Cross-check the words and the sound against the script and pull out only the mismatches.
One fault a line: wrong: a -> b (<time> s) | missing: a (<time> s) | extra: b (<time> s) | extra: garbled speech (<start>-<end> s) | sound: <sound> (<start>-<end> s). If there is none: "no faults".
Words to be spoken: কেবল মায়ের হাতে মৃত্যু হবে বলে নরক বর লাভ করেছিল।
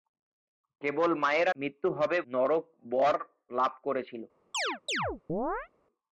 missing: হাতে (1.5 s)
missing: বলে (2.2 s)
sound: chirp (4.5-5.7 s)